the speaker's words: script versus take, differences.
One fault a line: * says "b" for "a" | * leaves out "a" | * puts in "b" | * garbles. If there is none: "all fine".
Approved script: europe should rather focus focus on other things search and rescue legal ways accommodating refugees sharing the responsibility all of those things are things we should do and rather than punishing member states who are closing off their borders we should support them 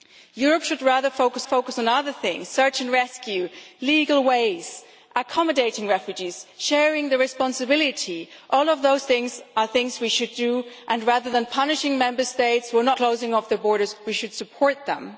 all fine